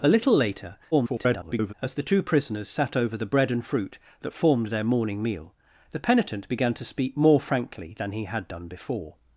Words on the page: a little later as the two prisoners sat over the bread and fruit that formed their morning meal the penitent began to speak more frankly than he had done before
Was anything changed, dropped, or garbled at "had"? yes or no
no